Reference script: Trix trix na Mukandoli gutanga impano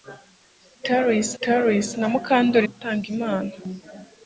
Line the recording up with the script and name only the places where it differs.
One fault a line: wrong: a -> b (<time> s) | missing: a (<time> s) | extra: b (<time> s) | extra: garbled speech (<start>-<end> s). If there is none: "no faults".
no faults